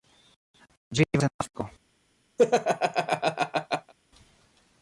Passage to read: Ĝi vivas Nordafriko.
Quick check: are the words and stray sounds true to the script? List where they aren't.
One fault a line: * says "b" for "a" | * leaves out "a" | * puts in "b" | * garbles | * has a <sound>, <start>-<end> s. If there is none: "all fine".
* has a laugh, 2.4-3.9 s